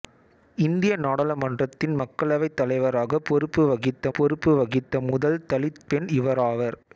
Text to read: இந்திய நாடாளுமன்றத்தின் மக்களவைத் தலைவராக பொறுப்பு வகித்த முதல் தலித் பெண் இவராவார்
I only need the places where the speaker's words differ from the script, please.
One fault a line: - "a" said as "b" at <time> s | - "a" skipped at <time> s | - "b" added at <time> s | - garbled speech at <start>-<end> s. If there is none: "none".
- "பொறுப்பு வகித்த" added at 4.1 s